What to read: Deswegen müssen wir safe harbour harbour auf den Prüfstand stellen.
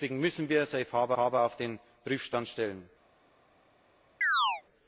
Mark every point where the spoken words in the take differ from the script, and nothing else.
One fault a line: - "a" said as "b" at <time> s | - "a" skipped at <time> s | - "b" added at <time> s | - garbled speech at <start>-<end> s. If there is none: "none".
none